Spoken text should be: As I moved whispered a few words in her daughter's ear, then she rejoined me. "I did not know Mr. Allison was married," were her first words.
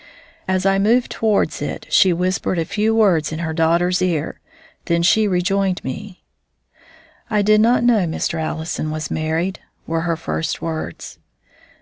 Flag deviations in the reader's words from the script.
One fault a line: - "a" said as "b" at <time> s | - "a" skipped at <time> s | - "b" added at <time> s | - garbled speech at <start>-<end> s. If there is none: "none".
- "towards it she" added at 1.1 s